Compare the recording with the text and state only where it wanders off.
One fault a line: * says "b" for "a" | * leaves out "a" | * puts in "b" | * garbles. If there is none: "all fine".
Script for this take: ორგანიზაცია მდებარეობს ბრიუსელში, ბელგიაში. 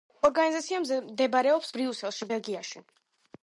all fine